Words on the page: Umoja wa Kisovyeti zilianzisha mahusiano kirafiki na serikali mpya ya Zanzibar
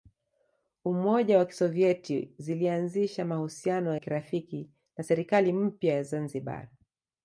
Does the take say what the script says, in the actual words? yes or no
yes